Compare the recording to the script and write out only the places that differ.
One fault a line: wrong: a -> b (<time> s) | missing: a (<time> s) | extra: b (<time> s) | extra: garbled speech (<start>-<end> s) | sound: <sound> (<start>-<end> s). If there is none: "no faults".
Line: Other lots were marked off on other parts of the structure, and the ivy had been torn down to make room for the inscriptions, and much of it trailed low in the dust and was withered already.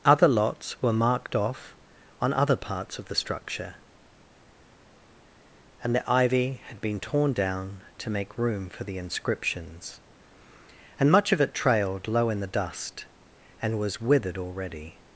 no faults